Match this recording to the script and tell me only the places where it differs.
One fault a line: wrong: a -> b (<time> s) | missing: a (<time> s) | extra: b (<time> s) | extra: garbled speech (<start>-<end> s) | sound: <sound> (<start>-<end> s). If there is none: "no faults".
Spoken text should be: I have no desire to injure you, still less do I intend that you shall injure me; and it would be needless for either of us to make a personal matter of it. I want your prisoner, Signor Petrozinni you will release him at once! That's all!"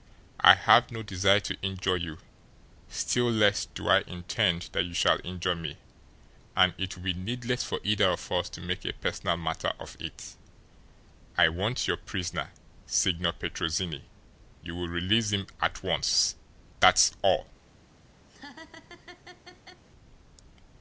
sound: laugh (18.3-19.8 s)